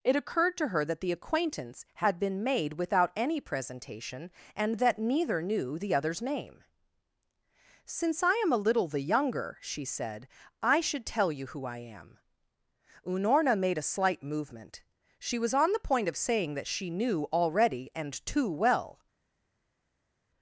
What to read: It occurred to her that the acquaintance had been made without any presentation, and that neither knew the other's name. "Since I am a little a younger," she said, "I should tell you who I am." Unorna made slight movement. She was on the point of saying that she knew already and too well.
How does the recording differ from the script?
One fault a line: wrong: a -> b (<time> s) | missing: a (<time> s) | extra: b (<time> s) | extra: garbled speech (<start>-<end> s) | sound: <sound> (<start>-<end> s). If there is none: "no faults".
wrong: a -> the (8.9 s)
extra: a (13.8 s)